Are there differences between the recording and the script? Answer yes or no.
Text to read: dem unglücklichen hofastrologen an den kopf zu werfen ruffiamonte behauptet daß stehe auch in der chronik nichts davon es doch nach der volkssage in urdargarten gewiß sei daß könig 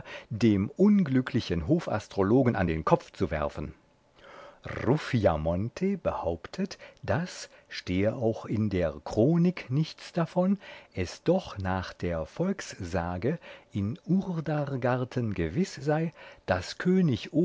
no